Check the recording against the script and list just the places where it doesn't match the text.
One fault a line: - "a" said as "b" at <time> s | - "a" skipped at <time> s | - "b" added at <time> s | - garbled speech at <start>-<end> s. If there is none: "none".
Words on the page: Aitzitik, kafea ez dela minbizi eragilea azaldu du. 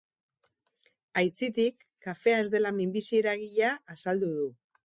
none